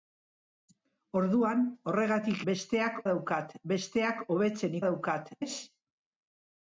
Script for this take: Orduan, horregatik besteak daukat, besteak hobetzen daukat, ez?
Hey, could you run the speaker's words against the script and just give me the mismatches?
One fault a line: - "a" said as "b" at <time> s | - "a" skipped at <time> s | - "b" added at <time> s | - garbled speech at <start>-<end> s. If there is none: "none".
none